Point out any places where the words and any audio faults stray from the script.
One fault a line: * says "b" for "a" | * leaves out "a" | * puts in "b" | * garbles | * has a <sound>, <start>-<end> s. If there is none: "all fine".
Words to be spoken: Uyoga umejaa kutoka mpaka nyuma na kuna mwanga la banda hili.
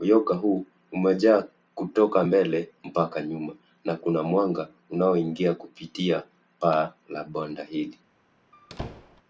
* puts in "huu"
* puts in "mbele"
* puts in "unaoingia kupitia paa"
* has a squeak, 8.5-9.2 s